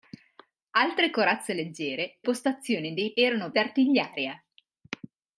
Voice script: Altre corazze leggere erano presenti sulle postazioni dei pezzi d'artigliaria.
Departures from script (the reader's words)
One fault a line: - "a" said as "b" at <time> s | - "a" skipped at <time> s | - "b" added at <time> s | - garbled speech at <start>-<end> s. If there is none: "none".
- "erano presenti sulle" skipped at 2.2 s
- "pezzi" said as "erano" at 3.1 s